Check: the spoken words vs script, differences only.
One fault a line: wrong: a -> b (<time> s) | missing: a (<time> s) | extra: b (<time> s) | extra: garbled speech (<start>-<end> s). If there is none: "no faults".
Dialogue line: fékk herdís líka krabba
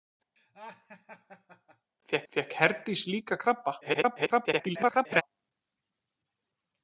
extra: fékk (2.3 s)
extra: garbled speech (3.8-5.2 s)